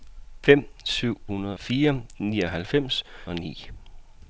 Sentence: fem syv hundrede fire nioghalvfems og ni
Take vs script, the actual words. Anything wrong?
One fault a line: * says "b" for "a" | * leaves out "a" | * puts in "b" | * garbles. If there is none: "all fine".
all fine